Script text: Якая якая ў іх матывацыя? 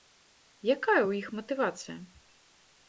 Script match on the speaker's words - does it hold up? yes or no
no